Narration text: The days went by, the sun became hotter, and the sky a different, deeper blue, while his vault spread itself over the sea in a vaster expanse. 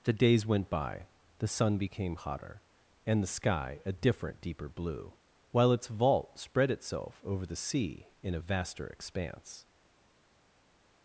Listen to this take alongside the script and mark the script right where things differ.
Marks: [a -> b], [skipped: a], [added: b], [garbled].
The days went by, the sun became hotter, and the sky a different, deeper blue, while [his -> its] vault spread itself over the sea in a vaster expanse.